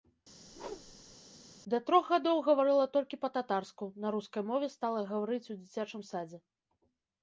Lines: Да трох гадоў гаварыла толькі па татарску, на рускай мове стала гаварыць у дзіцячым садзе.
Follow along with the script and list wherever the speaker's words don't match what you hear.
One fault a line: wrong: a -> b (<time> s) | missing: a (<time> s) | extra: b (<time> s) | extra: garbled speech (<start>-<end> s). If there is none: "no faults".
no faults